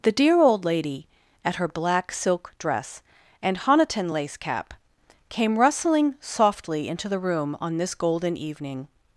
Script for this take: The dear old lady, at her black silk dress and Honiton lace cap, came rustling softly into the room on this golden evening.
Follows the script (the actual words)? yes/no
yes